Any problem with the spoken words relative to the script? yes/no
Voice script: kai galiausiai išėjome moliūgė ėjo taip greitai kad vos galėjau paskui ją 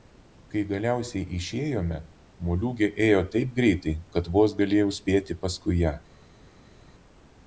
yes